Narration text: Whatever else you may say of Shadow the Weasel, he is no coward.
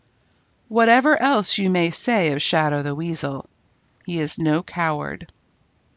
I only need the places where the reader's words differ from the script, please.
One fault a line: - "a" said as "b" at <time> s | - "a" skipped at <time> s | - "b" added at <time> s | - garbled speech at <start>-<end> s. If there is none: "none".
none